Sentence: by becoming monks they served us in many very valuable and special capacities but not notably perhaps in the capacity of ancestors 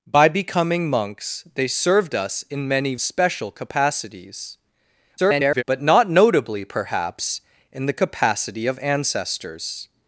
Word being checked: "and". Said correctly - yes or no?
no